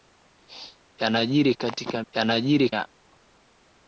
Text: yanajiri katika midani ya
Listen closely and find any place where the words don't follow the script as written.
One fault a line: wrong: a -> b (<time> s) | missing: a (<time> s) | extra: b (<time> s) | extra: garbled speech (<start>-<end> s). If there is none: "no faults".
wrong: midani -> yanajiri (2.1 s)